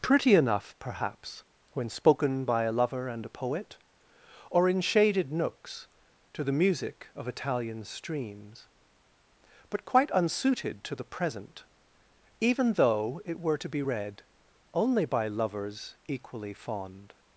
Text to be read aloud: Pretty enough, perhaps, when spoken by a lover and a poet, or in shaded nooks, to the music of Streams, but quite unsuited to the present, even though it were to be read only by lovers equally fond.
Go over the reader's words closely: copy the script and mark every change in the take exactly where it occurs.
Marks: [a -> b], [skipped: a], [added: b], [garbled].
Pretty enough, perhaps, when spoken by a lover and a poet, or in shaded nooks, to the music of [added: Italian] Streams, but quite unsuited to the present, even though it were to be read only by lovers equally fond.